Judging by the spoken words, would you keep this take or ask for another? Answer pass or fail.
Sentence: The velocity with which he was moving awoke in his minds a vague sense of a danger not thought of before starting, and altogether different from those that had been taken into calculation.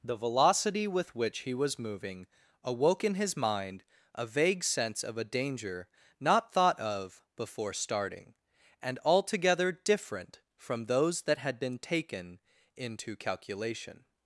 fail